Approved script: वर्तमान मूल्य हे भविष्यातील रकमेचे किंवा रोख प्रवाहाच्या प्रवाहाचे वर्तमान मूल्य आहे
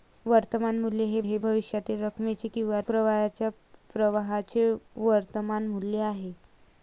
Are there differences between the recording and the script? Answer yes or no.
yes